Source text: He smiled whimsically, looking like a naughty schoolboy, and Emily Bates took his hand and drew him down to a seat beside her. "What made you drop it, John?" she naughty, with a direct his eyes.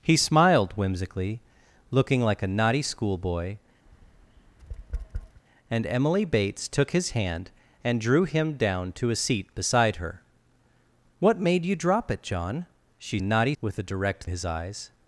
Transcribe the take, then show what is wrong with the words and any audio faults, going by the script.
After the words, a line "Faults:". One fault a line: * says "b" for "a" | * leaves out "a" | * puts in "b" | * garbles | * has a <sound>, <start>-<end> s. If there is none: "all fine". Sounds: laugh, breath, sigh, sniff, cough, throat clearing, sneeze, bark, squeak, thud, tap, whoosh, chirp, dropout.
He smiled whimsically, looking like a naughty schoolboy, and Emily Bates took his hand and drew him down to a seat beside her. "What made you drop it, John?" she naughty, with a direct his eyes.
Faults:
* has a tap, 3.9-5.4 s